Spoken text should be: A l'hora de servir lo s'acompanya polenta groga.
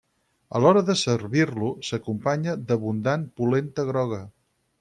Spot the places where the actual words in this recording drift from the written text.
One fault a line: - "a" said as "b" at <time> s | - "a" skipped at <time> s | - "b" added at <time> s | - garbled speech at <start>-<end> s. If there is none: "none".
- "d'abundant" added at 2.7 s